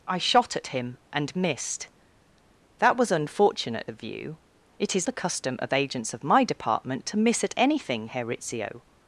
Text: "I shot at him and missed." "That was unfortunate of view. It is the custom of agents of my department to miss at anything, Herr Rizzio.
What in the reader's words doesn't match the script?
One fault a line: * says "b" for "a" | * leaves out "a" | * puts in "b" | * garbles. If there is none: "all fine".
all fine